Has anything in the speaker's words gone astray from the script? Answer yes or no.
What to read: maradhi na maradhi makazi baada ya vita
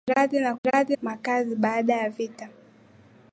no